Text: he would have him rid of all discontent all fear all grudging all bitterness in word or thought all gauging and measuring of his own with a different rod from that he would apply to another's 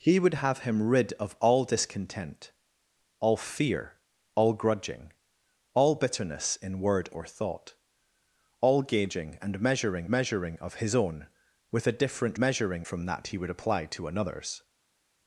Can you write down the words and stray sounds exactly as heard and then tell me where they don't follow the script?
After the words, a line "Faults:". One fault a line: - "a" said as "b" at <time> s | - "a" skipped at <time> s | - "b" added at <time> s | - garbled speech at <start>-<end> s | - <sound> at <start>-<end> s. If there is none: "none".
he would have him rid of all discontent all fear all grudging all bitterness in word or thought all gauging and measuring measuring of his own with a different measuring from that he would apply to another's
Faults:
- "measuring" added at 10.1 s
- "rod" said as "measuring" at 12.4 s